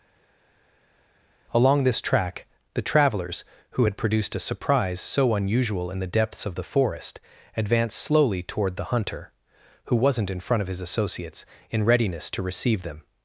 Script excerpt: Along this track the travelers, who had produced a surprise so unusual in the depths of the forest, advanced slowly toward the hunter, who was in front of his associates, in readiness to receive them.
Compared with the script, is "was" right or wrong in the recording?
wrong